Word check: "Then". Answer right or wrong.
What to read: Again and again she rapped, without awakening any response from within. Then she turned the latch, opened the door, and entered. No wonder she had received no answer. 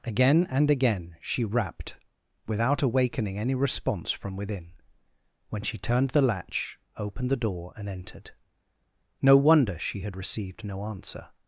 wrong